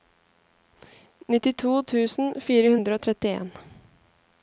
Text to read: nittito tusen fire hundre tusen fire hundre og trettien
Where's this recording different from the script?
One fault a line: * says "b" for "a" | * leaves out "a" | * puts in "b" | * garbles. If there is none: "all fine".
* leaves out "tusen fire hundre"